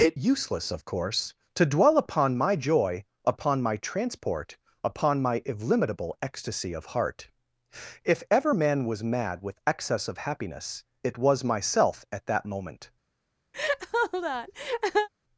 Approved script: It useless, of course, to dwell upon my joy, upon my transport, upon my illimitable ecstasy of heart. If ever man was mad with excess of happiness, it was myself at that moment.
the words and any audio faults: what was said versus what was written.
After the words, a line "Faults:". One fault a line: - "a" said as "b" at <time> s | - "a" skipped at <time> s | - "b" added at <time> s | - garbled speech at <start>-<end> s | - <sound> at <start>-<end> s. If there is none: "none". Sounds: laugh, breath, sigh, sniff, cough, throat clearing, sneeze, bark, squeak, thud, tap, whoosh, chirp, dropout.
It useless, of course, to dwell upon my joy, upon my transport, upon my illimitable ecstasy of heart. If ever man was mad with excess of happiness, it was myself at that moment.
Faults:
- laugh at 13.5-15.1 s